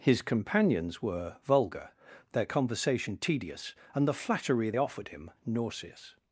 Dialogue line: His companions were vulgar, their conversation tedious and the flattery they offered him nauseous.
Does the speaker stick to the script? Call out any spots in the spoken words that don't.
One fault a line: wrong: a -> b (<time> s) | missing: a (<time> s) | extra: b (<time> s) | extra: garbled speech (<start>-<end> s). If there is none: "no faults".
missing: they (4.7 s)